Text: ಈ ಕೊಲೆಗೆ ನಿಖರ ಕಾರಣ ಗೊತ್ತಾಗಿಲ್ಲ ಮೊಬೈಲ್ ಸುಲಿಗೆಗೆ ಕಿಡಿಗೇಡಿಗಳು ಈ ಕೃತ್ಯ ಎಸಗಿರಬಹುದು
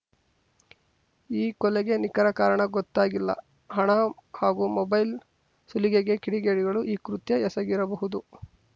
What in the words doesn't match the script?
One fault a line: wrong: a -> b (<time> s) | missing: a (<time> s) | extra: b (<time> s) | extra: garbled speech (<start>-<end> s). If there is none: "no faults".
extra: ಹಣ ಹಾಗೂ (3.7 s)